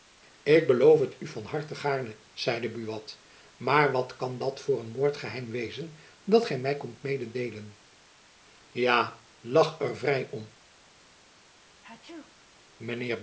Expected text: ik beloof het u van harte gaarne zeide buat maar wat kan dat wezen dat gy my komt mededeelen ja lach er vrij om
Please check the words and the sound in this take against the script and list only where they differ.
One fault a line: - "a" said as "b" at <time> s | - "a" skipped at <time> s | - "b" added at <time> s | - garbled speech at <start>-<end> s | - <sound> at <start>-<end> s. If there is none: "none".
- "voor een moordgeheim" added at 4.6 s
- sneeze at 11.6-12.3 s